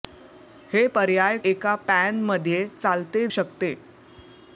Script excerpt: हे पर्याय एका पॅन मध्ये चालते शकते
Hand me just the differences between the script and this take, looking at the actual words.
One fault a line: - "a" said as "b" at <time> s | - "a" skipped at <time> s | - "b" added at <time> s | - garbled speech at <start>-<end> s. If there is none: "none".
none